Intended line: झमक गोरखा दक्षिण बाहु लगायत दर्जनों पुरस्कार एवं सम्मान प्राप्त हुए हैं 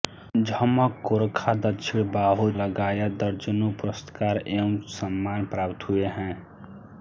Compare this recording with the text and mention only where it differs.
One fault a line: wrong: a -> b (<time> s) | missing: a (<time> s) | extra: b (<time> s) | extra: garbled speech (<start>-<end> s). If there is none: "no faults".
no faults